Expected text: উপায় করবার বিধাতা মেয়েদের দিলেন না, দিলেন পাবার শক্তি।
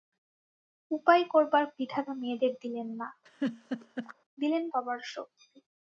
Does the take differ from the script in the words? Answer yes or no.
no